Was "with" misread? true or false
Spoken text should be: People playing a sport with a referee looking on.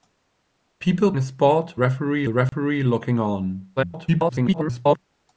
true